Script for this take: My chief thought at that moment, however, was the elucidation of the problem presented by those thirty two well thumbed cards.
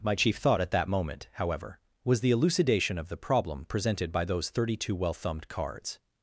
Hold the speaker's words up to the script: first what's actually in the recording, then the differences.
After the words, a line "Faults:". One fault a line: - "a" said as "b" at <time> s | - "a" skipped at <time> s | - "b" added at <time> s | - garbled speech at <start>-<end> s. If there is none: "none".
My chief thought at that moment, however, was the elucidation of the problem presented by those thirty two well thumbed cards.
Faults:
none